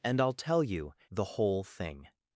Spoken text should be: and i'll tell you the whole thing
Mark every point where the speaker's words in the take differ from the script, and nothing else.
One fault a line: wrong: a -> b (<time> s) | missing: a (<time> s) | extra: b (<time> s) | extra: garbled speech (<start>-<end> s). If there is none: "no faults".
no faults